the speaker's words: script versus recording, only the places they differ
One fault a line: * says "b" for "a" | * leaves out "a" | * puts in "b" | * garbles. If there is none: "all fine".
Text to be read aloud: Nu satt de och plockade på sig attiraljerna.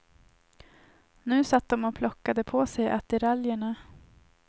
all fine